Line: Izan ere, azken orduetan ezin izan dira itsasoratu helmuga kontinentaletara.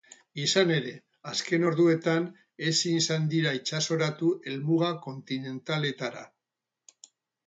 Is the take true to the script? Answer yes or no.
yes